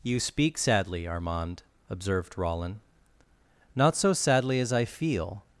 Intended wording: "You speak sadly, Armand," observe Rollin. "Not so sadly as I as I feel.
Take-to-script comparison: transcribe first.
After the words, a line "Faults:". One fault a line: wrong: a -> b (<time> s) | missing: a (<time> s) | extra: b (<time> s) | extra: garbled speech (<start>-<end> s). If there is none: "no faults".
"You speak sadly, Armand," observed Rollin. "Not so sadly as I feel.
Faults:
wrong: observe -> observed (1.9 s)
missing: as I (4.8 s)